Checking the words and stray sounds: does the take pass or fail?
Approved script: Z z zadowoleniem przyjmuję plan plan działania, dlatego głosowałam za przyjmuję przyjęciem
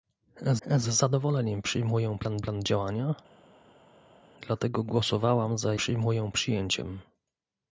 pass